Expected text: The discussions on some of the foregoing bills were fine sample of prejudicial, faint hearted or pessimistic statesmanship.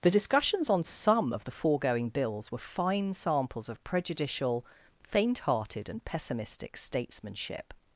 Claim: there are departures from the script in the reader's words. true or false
true